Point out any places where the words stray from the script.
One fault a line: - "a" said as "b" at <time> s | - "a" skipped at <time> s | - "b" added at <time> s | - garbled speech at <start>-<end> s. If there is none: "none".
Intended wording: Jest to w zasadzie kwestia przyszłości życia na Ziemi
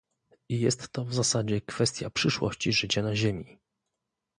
none